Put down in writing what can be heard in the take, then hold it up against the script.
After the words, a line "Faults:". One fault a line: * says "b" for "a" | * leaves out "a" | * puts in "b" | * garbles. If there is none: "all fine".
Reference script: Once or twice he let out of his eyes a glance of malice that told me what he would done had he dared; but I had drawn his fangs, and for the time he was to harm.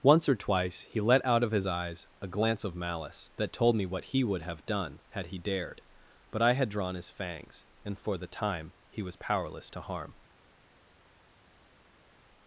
Once or twice he let out of his eyes a glance of malice that told me what he would have done had he dared; but I had drawn his fangs, and for the time he was powerless to harm.
Faults:
* puts in "have"
* puts in "powerless"